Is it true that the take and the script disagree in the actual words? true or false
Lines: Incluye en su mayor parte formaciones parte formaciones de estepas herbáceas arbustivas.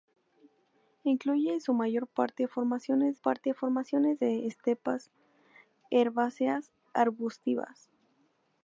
false